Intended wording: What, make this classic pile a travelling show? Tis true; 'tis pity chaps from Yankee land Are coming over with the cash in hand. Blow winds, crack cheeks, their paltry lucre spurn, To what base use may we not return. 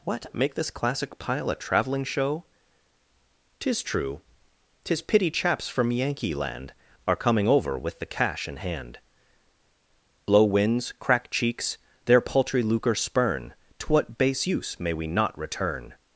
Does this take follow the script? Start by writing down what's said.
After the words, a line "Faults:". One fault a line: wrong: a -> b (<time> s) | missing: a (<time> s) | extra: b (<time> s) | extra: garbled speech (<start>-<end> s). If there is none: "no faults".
What, make this classic pile a travelling show? Tis true; 'tis pity chaps from Yankee land Are coming over with the cash in hand. Blow winds, crack cheeks, their paltry lucre spurn, To what base use may we not return.
Faults:
no faults